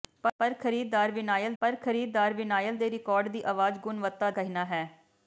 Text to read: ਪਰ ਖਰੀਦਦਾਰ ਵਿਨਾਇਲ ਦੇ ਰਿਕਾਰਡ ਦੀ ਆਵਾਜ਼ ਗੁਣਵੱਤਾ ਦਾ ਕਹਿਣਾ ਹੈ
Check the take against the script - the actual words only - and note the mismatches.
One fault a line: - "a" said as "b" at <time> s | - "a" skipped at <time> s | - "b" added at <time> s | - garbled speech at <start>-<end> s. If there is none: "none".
- "ਪਰ ਖਰੀਦਦਾਰ ਵਿਨਾਇਲ" added at 1.6 s
- "ਦਾ" skipped at 4.3 s